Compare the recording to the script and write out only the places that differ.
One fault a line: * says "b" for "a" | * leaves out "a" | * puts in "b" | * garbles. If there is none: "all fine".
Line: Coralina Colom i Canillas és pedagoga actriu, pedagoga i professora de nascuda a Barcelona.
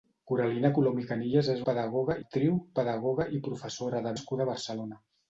all fine